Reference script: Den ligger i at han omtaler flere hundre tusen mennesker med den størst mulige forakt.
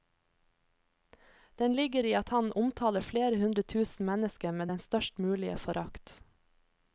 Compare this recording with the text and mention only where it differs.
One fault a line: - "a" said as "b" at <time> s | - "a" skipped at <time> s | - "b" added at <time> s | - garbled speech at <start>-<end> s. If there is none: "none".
none